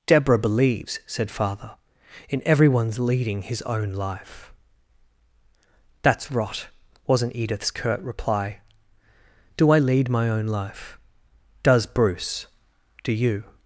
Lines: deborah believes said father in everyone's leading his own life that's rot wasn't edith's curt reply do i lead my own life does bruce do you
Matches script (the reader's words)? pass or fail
pass